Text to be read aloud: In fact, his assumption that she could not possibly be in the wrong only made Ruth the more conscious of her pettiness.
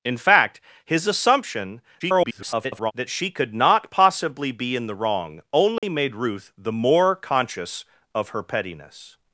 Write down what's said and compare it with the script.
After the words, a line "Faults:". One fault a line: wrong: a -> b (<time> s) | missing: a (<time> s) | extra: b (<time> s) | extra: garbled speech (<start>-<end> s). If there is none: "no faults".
In fact, his assumption [garbled] that she could not possibly be in the wrong only made Ruth the more conscious of her pettiness.
Faults:
extra: garbled speech (2.0-2.9 s)